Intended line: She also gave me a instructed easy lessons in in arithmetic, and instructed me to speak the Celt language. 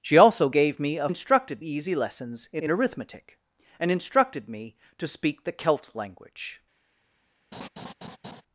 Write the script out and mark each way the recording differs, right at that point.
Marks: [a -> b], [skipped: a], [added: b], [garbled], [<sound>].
She also gave me a instructed easy lessons in in arithmetic, and instructed me to speak the Celt language. [laugh]